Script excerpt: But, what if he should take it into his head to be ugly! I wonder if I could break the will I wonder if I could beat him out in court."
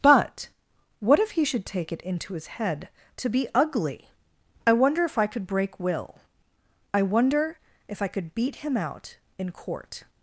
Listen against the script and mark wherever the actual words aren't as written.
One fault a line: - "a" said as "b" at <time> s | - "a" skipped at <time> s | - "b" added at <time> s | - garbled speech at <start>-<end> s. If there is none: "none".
- "the" skipped at 5.8 s